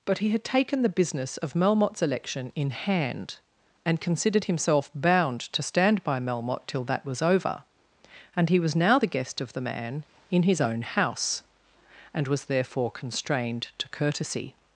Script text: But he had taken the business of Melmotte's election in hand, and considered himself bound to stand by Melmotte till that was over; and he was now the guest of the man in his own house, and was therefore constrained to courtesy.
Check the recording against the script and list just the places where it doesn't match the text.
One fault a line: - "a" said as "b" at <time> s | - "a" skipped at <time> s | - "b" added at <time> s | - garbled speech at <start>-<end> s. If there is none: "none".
none